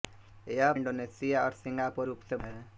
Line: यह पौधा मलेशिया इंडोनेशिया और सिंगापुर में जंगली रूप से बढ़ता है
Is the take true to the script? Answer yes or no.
no